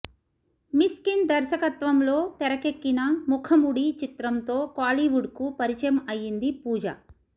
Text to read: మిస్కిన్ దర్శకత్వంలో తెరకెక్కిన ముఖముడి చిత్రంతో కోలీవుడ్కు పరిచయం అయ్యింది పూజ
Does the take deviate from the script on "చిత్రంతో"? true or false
false